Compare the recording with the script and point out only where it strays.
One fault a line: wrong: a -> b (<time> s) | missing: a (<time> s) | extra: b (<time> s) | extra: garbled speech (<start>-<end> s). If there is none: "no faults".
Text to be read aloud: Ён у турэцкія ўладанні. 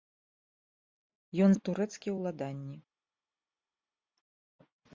no faults